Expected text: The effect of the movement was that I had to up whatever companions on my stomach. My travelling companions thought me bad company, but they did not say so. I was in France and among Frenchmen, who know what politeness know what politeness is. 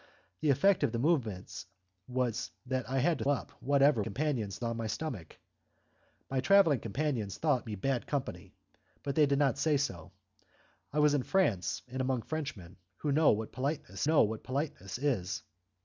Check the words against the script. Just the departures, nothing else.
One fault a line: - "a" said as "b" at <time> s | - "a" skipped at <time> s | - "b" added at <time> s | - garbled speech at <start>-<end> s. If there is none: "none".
none